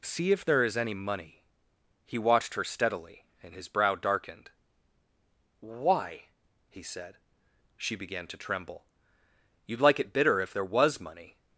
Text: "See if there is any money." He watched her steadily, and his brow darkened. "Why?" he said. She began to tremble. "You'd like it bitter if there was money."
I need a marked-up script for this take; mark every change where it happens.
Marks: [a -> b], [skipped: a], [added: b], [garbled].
"See if there is any money." He watched her steadily, and his brow darkened. "Why?" he said. She began to tremble. "You'd like it bitter if there was money."